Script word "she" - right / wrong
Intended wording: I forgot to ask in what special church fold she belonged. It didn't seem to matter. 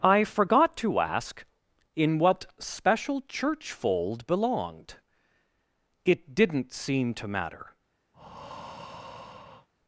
wrong